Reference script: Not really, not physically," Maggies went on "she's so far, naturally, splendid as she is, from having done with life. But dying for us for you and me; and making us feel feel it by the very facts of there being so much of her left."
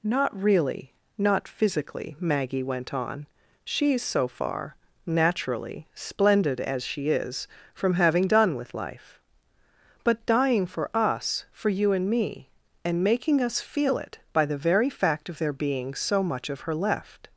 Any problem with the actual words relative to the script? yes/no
yes